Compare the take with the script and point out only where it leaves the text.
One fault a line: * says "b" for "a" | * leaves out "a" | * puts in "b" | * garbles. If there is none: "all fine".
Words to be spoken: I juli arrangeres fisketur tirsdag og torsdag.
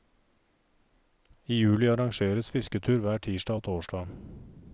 * puts in "hver"